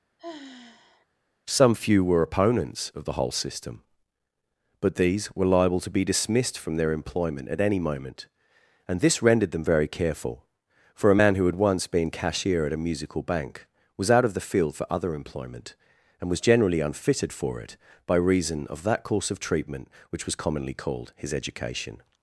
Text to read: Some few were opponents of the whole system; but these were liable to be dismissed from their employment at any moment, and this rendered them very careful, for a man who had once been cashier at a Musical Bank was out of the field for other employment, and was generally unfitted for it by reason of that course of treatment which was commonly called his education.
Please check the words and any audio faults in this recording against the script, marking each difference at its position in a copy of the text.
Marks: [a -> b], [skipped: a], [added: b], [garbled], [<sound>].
[sigh] Some few were opponents of the whole system; but these were liable to be dismissed from their employment at any moment, and this rendered them very careful, for a man who had once been cashier at a Musical Bank was out of the field for other employment, and was generally unfitted for it by reason of that course of treatment which was commonly called his education.